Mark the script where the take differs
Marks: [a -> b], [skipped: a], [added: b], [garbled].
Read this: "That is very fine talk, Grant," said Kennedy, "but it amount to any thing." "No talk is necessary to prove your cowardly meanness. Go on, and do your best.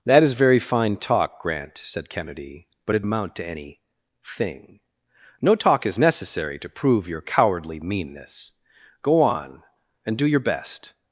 "That is very fine talk, Grant," said Kennedy, "but it amount to any thing." "No talk is necessary to prove your cowardly meanness. Go on, and do your best.